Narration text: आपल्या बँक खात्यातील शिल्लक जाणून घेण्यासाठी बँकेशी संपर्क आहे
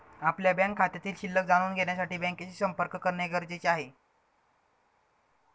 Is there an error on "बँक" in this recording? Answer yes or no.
no